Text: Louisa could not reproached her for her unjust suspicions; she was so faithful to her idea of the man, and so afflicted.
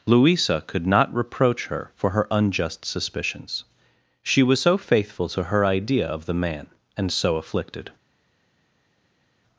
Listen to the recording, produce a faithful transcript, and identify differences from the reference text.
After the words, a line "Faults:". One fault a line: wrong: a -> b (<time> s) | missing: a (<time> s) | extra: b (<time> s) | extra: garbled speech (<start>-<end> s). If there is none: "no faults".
Louisa could not reproach her for her unjust suspicions; she was so faithful to her idea of the man, and so afflicted.
Faults:
wrong: reproached -> reproach (1.1 s)